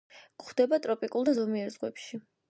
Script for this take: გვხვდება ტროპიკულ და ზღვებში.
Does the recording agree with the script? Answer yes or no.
no